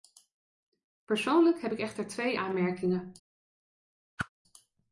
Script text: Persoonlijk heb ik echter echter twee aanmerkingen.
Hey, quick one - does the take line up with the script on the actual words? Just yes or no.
no